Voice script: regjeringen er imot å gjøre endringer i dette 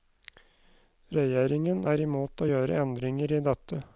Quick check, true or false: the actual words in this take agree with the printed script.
true